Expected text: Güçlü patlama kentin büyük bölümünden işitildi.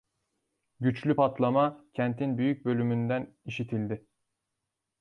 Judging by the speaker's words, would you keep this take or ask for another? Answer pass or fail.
pass